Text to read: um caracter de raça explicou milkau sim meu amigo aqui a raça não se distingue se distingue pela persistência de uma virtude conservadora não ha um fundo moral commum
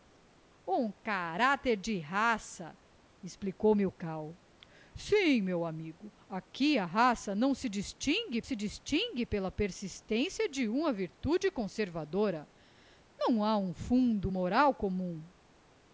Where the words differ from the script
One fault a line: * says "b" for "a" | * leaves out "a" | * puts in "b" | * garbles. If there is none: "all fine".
all fine